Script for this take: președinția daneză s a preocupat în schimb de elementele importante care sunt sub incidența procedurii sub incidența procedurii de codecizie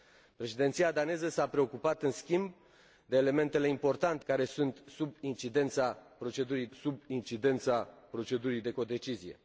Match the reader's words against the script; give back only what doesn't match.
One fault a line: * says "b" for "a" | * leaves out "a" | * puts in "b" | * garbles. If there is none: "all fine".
all fine